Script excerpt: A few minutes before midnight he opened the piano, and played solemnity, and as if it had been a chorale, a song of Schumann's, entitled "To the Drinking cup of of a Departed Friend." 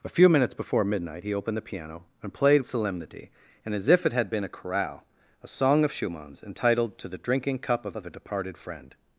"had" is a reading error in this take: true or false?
false